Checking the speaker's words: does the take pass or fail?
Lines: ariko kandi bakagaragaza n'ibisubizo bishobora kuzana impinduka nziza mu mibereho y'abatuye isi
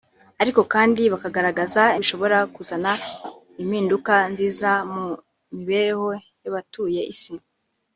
fail